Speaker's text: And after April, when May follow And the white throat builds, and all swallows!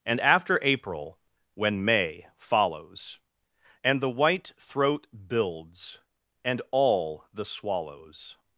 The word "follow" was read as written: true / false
false